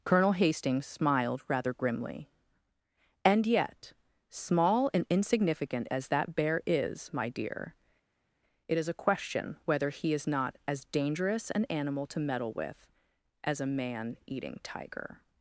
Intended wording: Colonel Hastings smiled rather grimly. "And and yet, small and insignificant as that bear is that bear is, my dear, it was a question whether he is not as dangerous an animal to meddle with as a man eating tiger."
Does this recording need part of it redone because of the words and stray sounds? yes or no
yes